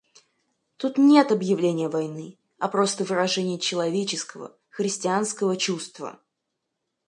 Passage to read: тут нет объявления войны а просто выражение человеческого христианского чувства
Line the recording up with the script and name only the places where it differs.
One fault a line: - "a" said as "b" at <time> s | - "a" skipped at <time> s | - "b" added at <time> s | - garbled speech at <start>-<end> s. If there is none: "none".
none